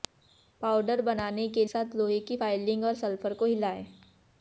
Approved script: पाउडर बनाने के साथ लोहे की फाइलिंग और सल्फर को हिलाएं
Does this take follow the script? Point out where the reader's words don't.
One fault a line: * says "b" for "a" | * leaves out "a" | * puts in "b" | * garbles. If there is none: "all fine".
all fine